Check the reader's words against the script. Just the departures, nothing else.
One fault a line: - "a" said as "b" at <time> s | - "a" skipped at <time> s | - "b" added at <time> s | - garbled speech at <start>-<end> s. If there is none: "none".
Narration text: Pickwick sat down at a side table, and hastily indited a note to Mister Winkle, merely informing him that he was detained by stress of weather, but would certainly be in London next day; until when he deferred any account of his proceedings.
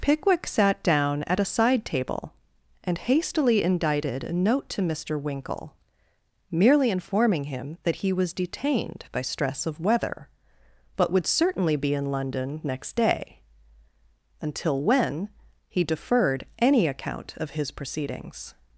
none